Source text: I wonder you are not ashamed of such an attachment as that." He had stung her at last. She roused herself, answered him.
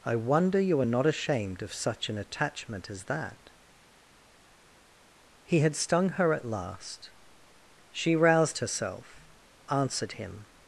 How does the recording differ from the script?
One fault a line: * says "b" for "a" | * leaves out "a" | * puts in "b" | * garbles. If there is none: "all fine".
all fine